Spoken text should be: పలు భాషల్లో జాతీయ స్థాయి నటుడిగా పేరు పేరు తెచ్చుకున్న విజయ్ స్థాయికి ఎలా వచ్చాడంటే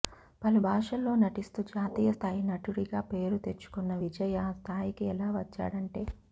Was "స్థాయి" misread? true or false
false